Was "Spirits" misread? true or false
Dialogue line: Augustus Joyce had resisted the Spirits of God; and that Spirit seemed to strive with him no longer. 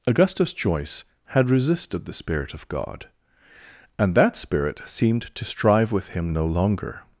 true